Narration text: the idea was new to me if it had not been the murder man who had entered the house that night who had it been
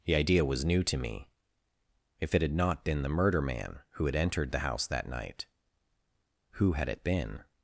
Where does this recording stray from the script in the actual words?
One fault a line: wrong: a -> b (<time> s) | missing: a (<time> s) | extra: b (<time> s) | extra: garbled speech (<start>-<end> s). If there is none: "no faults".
no faults